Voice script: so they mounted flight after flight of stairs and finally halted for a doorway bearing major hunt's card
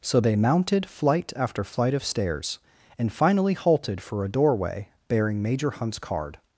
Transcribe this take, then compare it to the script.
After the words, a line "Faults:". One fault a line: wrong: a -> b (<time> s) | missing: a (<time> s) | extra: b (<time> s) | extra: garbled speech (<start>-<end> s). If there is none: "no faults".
so they mounted flight after flight of stairs and finally halted for a doorway bearing major hunt's card
Faults:
no faults